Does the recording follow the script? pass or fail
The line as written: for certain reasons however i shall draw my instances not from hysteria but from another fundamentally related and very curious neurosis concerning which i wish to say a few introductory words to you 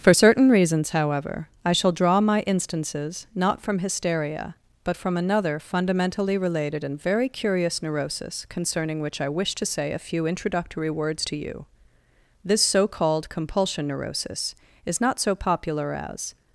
fail